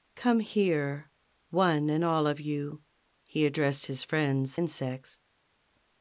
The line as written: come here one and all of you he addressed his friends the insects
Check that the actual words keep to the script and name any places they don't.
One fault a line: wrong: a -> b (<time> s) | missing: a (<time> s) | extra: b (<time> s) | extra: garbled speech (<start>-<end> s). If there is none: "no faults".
missing: the (4.6 s)